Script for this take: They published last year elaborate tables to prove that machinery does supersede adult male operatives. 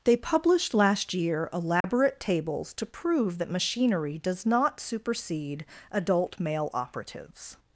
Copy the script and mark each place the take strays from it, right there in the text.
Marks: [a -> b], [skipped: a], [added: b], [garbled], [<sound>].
They published last year elaborate [dropout] tables to prove that machinery does [added: not] supersede adult male operatives.